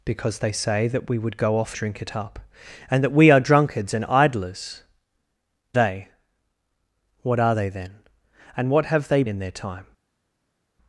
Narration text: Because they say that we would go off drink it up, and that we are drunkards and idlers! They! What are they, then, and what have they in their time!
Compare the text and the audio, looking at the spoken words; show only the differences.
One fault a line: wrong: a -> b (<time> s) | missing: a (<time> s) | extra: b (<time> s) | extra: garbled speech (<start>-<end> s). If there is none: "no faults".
no faults